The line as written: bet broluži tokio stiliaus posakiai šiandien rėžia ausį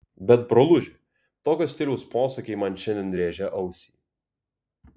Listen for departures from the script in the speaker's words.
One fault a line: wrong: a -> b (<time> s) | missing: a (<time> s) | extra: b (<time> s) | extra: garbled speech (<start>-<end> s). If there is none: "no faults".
extra: man (2.6 s)